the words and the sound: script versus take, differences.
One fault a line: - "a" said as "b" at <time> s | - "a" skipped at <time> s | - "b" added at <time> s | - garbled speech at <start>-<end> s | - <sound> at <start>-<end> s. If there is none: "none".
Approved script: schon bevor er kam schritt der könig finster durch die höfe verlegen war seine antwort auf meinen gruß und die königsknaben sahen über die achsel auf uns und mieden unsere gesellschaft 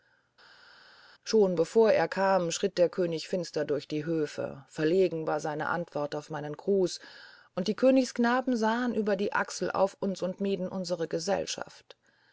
none